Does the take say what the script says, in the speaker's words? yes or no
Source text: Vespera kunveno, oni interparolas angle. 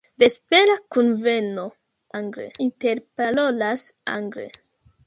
no